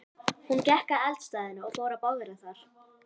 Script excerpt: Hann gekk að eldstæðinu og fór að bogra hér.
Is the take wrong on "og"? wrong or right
right